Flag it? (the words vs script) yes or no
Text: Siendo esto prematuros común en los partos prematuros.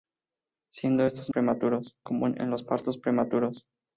no